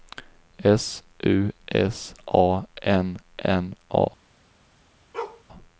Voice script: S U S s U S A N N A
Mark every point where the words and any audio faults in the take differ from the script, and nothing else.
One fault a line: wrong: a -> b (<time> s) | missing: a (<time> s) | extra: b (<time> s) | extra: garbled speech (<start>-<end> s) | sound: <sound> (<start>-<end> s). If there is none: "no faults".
missing: s U S (2.1 s)
sound: bark (5.1-5.4 s)